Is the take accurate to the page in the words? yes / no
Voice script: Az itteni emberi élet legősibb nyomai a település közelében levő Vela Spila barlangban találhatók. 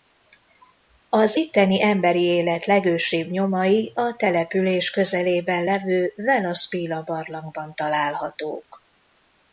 yes